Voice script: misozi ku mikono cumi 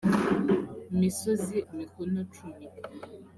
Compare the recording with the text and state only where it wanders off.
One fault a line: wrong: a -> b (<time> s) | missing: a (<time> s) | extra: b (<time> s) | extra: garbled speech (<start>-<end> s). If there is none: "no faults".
no faults